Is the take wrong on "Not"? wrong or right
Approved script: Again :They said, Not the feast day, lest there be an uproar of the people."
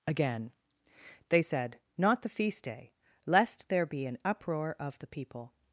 right